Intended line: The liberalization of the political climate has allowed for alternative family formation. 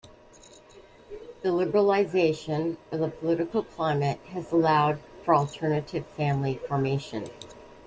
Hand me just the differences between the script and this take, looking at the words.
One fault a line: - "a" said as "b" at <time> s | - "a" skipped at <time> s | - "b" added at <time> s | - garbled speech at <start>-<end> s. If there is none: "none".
none